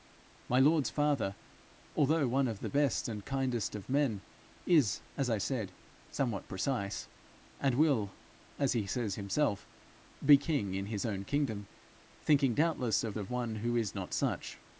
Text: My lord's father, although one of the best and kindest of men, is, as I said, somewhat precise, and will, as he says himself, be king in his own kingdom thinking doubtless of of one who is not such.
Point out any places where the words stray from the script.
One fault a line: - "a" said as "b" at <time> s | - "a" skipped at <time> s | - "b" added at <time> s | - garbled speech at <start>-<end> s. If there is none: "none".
none